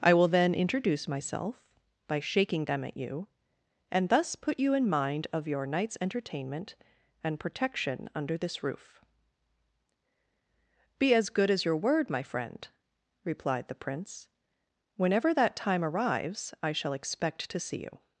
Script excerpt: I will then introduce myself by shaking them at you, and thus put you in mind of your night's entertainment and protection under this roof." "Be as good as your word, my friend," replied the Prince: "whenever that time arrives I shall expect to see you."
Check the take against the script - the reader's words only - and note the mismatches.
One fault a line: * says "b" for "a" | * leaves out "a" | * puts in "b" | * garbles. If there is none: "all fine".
all fine